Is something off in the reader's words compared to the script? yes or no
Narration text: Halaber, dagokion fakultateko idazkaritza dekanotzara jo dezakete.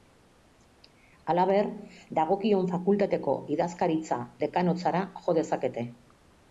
no